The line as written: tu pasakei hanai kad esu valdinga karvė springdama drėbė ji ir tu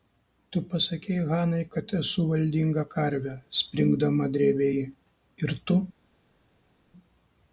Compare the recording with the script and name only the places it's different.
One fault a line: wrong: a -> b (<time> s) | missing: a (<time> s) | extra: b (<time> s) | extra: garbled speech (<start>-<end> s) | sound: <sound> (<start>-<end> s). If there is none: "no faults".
no faults